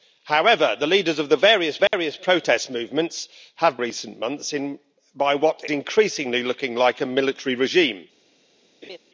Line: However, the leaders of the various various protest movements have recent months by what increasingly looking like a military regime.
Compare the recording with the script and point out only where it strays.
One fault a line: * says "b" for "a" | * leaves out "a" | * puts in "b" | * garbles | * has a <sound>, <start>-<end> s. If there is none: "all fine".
* has a dropout, 1.9-1.9 s
* has a laugh, 8.8-9.0 s